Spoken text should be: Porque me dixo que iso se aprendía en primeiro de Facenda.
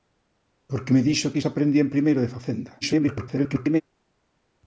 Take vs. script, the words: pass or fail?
fail